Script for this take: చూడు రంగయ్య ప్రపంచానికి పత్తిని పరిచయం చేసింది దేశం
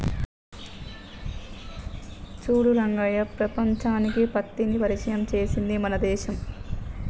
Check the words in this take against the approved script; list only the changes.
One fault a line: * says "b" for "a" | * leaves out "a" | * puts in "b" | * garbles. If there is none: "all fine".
* puts in "మన"